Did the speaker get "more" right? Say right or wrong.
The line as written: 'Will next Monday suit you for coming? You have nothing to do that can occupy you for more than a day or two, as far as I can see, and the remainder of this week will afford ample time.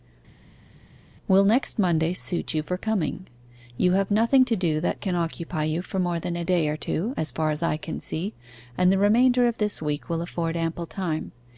right